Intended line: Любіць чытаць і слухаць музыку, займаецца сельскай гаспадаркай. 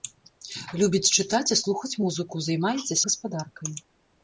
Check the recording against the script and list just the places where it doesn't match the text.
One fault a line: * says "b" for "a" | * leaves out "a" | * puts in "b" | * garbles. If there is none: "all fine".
* leaves out "сельскай"